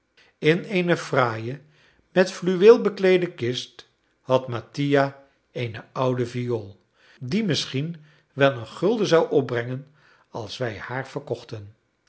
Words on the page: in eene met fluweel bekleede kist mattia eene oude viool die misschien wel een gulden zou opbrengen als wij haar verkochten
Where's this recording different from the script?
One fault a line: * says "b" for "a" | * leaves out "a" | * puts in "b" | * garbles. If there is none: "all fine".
* puts in "fraaie"
* puts in "had"